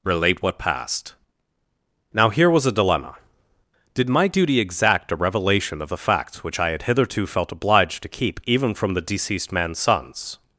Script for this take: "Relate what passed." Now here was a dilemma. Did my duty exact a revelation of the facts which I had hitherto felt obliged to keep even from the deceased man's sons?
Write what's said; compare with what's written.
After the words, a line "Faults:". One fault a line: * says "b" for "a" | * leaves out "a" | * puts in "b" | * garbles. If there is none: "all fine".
"Relate what passed." Now here was a dilemma. Did my duty exact a revelation of the facts which I had hitherto felt obliged to keep even from the deceased man's sons?
Faults:
all fine